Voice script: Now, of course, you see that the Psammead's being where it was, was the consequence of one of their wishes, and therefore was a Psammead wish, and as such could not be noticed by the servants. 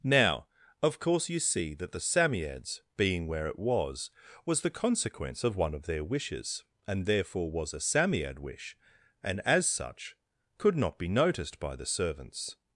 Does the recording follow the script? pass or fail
pass